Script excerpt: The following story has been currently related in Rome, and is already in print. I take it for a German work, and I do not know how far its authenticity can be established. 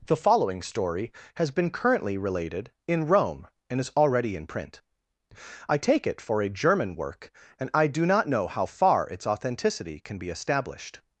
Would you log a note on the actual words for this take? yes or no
no